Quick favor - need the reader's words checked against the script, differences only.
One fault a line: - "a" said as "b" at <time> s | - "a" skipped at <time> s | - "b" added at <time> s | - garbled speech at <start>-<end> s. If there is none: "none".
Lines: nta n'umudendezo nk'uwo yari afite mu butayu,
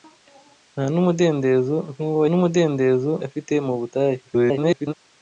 - "yari" said as "n'umudendezo" at 2.3 s
- garbled speech at 4.2-4.9 s